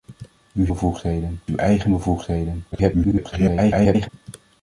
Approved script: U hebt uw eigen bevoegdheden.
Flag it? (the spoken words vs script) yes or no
yes